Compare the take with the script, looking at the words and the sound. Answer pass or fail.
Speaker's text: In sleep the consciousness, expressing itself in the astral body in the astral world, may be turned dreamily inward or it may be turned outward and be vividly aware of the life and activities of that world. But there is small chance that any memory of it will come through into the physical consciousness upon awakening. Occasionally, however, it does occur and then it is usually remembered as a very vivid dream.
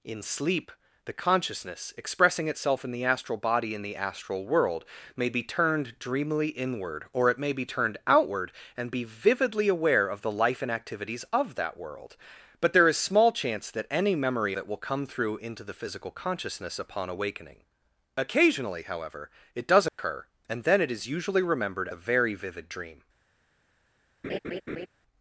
fail